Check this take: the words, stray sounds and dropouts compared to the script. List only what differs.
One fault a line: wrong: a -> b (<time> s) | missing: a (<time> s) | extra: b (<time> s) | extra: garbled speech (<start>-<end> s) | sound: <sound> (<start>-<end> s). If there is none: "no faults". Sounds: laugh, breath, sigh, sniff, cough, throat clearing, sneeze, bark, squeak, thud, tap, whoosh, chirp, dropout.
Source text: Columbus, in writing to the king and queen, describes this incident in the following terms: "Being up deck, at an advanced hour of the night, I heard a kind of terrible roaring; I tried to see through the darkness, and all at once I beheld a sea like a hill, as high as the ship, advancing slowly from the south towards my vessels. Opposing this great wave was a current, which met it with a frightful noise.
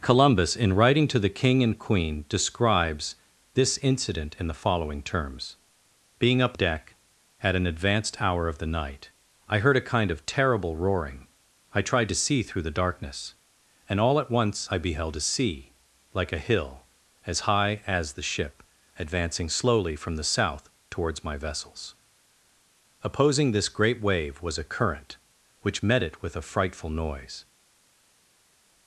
no faults